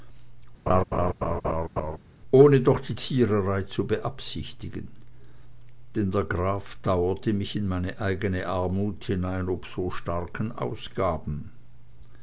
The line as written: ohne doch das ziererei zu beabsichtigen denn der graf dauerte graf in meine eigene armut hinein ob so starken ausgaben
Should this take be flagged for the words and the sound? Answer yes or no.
yes